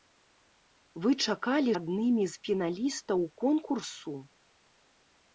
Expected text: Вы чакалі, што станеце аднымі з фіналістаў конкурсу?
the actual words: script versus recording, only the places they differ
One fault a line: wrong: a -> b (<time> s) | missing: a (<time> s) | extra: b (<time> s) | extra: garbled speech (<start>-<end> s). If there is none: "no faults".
missing: што станеце (1.8 s)